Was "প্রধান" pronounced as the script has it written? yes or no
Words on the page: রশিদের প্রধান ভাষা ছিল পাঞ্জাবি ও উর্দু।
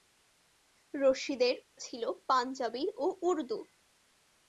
no